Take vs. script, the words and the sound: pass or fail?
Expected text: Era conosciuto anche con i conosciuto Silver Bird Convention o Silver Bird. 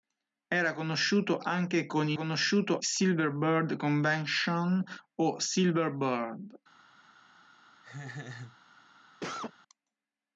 fail